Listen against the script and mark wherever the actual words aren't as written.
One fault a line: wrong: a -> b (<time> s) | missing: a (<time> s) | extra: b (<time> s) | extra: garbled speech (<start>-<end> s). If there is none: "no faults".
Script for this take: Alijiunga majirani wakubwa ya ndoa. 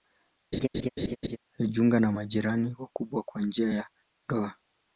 extra: na (2.0 s)
extra: kwa njia (3.2 s)